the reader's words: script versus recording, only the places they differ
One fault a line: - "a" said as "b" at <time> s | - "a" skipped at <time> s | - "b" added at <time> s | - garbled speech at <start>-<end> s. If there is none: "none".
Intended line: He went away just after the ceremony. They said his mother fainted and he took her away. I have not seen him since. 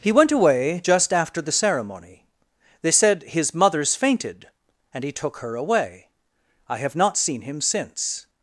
- "mother" said as "mothers" at 3.5 s